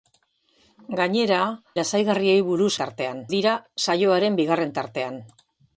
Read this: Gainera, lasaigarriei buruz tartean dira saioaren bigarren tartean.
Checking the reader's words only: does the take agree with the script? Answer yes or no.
yes